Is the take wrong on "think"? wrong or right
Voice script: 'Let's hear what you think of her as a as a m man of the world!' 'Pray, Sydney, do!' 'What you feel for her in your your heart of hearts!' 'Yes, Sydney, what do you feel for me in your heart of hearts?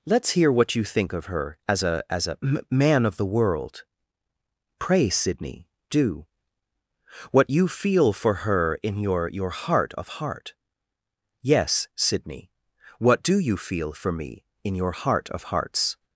right